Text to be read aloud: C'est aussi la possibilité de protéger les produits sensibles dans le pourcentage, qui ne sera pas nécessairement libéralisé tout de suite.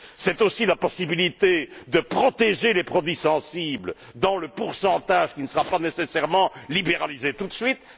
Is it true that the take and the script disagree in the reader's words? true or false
false